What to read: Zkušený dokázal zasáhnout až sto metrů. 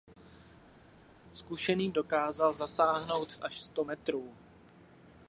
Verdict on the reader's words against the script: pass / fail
pass